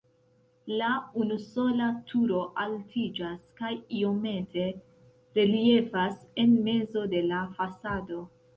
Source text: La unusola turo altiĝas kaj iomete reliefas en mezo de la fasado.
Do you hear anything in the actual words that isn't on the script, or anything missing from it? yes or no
no